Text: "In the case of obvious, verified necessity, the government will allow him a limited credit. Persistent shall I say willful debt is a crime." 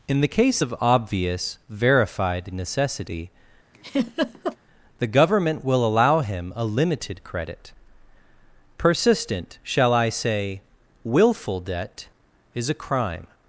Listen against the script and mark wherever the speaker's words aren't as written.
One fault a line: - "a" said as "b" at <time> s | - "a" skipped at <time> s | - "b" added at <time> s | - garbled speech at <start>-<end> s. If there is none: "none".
none